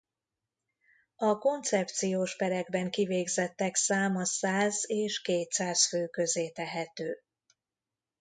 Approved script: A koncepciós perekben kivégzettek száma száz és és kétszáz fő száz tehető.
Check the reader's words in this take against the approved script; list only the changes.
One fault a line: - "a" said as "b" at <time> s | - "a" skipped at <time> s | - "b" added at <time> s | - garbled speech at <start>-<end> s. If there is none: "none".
- "és" skipped at 5.2 s
- "száz" said as "közé" at 6.1 s